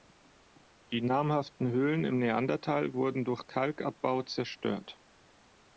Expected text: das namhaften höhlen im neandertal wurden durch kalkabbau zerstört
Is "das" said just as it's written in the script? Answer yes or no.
no